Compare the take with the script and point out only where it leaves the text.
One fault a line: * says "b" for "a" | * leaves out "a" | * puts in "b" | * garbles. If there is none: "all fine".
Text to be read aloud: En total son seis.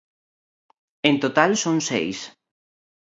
all fine